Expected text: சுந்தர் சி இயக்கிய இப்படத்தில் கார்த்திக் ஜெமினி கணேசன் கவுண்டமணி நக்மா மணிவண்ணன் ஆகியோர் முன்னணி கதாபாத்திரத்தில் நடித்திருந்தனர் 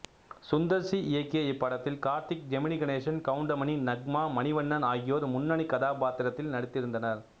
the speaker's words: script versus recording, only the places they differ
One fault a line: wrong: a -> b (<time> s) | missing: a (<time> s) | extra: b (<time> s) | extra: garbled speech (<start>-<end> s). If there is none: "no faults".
no faults